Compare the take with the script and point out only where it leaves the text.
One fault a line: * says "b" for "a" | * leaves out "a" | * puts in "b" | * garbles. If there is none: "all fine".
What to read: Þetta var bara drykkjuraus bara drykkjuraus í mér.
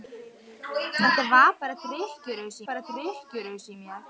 all fine